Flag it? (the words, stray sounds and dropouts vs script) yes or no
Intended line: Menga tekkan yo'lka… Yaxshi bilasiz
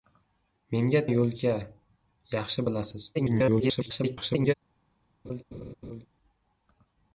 yes